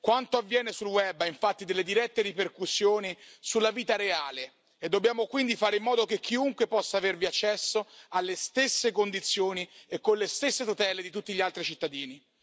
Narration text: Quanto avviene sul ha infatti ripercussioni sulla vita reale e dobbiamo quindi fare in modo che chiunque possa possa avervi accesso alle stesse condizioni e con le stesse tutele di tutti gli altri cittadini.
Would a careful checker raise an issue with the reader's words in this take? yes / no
yes